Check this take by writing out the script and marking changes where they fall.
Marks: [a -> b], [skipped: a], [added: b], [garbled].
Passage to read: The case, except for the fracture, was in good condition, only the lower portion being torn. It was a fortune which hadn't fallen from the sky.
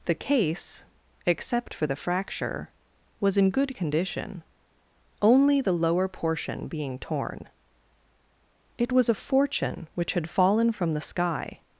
The case, except for the fracture, was in good condition, only the lower portion being torn. It was a fortune which [hadn't -> had] fallen from the sky.